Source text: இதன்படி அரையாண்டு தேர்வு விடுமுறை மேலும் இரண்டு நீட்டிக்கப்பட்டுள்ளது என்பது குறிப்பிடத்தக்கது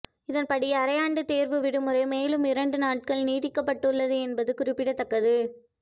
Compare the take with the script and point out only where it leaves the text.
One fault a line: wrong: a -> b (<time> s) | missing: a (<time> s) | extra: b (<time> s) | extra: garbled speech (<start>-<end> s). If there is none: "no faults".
extra: நாட்கள் (2.8 s)